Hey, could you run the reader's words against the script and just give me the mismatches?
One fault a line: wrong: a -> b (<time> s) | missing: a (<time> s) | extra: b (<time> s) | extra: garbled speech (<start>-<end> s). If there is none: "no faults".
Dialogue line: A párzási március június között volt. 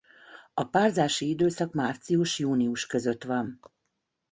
extra: időszak (1.3 s)
wrong: volt -> van (3.2 s)